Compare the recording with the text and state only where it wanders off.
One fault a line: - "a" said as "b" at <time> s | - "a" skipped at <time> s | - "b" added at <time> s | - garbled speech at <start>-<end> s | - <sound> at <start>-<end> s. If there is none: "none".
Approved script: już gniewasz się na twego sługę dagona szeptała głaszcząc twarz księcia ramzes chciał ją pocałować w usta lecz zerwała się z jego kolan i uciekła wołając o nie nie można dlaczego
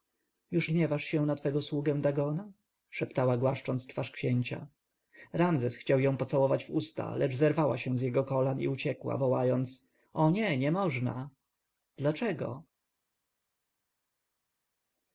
none